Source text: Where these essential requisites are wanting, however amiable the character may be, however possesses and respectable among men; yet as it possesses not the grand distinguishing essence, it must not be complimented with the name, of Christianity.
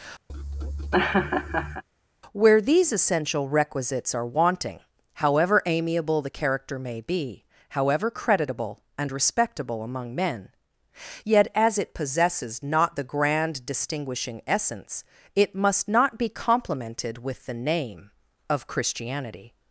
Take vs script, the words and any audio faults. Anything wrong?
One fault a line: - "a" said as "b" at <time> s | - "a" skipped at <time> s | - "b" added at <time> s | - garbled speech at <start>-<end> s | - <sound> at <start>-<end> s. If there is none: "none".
- laugh at 0.3-1.8 s
- "possesses" said as "creditable" at 8.1 s